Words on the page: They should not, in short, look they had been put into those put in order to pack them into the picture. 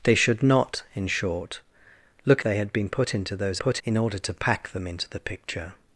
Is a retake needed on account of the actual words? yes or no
no